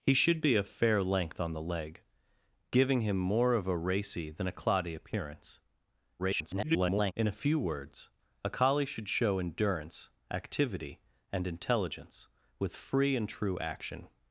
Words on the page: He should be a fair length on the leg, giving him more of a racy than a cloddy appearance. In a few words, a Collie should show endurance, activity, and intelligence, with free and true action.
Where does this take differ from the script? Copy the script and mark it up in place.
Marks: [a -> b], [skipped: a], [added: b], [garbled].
He should be a fair length on the leg, giving him more of a racy than a cloddy appearance. [garbled] In a few words, a Collie should show endurance, activity, and intelligence, with free and true action.